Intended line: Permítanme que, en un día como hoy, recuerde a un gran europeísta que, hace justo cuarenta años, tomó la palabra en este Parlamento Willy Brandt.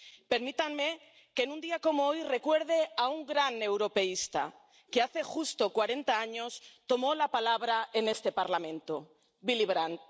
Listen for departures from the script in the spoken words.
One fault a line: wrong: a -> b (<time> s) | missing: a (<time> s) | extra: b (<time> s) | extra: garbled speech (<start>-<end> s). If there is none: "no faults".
no faults